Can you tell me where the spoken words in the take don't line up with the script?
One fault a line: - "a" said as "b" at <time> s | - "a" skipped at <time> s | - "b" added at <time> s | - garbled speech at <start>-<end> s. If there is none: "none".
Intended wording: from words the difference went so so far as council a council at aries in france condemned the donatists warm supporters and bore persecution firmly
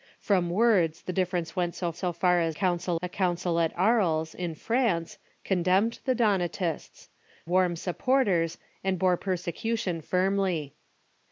none